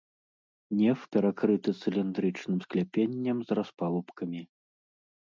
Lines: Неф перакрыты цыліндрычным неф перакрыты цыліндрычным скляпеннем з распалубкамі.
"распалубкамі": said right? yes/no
yes